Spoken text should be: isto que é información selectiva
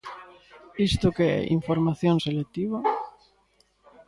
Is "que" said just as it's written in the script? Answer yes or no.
yes